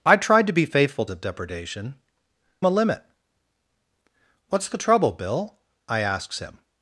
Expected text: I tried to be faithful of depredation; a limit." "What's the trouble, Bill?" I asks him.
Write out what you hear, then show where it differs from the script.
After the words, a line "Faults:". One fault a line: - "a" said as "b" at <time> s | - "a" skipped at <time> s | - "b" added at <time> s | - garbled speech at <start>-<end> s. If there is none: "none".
I tried to be faithful of depredation; a limit." "What's the trouble, Bill?" I asks him.
Faults:
none